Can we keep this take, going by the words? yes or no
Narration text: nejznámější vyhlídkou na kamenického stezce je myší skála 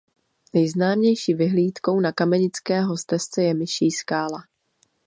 yes